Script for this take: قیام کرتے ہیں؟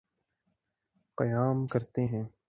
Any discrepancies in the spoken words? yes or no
no